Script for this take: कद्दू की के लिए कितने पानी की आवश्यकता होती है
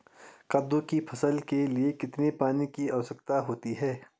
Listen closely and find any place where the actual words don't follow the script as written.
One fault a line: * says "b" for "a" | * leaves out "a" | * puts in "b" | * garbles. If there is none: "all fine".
* puts in "फसल"